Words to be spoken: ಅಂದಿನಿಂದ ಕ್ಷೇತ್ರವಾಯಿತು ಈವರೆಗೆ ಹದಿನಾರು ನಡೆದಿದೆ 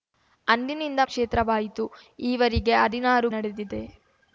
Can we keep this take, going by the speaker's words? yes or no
yes